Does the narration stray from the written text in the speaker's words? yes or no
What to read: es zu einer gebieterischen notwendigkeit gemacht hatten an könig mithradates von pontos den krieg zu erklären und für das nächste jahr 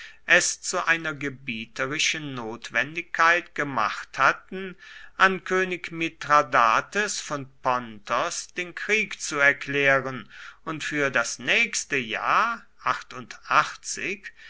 no